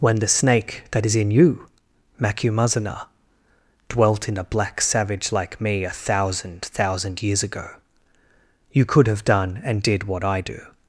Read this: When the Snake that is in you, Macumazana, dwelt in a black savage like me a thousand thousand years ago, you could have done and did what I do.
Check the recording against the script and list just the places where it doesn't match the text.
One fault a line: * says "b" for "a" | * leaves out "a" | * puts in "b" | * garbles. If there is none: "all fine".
all fine